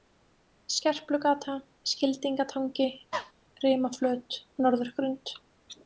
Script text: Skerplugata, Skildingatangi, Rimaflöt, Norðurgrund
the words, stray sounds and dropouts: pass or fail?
fail